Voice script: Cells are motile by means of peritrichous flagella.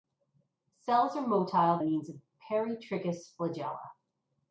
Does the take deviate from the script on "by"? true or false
true